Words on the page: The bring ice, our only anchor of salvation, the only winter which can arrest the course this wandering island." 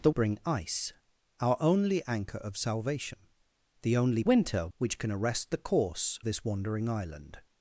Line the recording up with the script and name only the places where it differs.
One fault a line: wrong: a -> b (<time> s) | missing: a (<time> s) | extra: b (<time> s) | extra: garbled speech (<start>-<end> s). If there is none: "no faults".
no faults